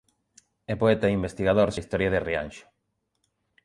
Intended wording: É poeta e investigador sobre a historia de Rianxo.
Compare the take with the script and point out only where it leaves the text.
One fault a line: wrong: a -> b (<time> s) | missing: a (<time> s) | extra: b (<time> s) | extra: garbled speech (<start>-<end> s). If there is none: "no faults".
missing: sobre (1.7 s)